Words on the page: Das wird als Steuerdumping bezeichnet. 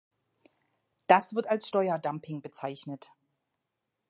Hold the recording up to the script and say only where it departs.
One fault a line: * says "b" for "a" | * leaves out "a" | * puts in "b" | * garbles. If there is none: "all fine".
all fine